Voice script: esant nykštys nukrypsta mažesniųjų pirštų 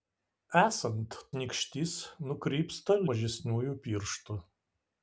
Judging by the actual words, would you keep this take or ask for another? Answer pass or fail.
pass